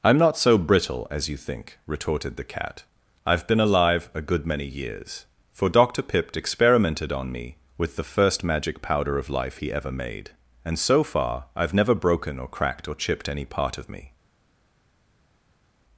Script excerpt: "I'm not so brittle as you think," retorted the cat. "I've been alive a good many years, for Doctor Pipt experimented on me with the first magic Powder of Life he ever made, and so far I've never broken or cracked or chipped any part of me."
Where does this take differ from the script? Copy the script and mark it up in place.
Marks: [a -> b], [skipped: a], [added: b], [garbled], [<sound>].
"I'm not so brittle as you think," retorted the cat. "I've been alive a good many years, for Doctor Pipt experimented on me with the first magic Powder of Life he ever made, and so far I've never broken or cracked or chipped any part of me."